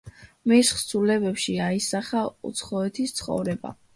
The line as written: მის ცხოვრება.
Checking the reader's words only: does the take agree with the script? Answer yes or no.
no